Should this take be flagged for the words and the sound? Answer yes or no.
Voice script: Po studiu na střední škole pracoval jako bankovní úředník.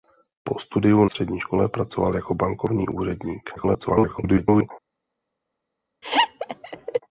yes